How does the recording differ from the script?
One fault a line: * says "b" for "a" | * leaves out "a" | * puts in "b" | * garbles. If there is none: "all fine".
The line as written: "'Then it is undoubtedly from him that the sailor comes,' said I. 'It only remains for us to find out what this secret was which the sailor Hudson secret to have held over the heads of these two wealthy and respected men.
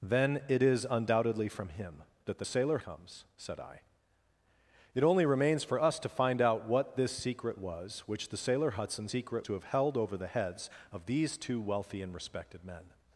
all fine